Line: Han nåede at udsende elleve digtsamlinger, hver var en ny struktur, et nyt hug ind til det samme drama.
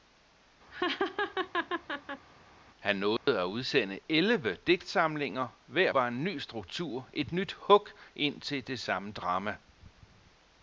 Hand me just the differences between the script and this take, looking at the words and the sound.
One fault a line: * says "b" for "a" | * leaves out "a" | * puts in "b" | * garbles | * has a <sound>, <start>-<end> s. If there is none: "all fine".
* has a laugh, 0.7-2.3 s
* has a dropout, 3.2-3.3 s